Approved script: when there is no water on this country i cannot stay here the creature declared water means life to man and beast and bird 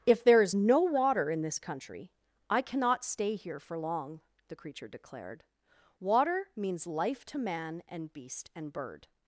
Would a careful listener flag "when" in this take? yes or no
yes